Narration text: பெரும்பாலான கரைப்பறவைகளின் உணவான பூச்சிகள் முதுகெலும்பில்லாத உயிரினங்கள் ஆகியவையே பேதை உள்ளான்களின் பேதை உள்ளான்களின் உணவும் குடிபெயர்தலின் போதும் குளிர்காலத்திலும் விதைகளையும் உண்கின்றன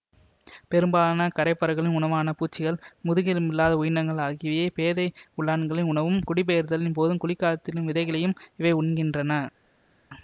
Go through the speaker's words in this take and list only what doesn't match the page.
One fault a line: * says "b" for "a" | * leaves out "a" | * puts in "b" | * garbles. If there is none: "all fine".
* leaves out "பேதை உள்ளான்களின்"
* puts in "இவை"